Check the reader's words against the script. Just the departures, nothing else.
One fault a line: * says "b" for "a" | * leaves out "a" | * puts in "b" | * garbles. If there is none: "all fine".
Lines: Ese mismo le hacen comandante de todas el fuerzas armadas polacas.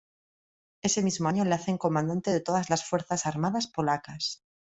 * puts in "año"
* says "las" for "el"